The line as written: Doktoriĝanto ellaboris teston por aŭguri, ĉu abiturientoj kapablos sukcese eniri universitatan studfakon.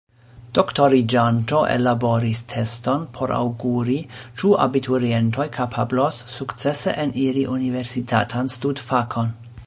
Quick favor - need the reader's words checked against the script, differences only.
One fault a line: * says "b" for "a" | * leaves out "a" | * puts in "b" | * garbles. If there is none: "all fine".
all fine